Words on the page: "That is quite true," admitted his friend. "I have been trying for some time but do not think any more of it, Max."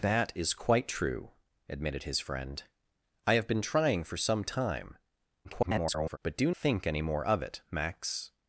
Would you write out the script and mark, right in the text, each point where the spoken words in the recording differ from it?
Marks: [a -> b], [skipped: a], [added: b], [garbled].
"That is quite true," admitted his friend. "I have been trying for some time [garbled] but do [skipped: not] think any more of it, Max."